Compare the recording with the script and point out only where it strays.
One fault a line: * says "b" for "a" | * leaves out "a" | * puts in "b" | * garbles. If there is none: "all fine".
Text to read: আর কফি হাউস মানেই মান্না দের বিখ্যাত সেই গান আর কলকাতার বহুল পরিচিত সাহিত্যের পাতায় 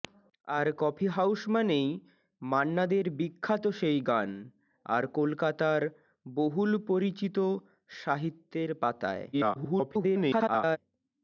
* garbles